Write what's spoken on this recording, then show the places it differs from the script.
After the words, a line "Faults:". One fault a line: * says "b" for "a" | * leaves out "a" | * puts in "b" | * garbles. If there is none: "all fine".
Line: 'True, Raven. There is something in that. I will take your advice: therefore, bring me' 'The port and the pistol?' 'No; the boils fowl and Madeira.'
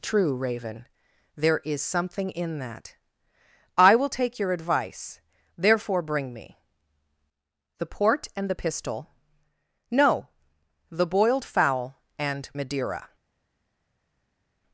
'True, Raven. There is something in that. I will take your advice: therefore, bring me' 'The port and the pistol?' 'No; the boiled fowl and Madeira.'
Faults:
* says "boiled" for "boils"